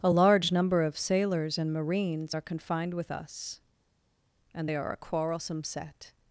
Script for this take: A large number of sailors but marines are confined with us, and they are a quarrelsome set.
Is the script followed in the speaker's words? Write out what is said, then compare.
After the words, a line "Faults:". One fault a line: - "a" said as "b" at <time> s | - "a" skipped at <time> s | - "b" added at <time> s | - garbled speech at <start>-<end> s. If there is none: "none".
A large number of sailors and marines are confined with us, and they are a quarrelsome set.
Faults:
- "but" said as "and" at 1.6 s